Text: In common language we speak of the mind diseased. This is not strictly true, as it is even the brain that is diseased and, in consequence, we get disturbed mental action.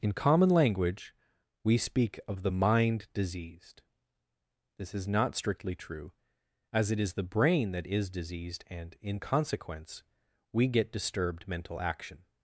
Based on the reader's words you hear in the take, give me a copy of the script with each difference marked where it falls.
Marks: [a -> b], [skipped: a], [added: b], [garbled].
In common language we speak of the mind diseased. This is not strictly true, as it is [skipped: even] the brain that is diseased and, in consequence, we get disturbed mental action.